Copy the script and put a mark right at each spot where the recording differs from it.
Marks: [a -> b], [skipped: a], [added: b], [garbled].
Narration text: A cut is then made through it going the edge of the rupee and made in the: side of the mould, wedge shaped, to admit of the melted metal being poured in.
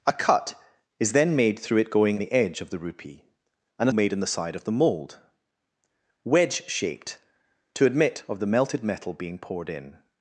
A cut is then made through it going the edge of the rupee and made in the: side of the mould, wedge shaped, to admit of the melted metal being poured in.